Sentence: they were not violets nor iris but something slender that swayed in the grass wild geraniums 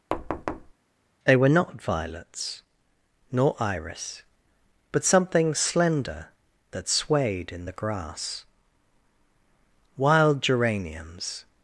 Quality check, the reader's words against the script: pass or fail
pass